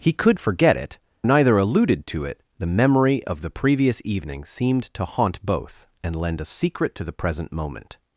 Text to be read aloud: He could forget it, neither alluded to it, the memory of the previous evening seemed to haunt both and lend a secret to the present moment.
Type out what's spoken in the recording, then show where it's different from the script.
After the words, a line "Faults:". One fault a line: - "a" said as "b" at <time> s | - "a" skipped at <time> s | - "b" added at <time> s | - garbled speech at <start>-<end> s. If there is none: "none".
He could forget it, neither alluded to it, the memory of the previous evening seemed to haunt both and lend a secret to the present moment.
Faults:
none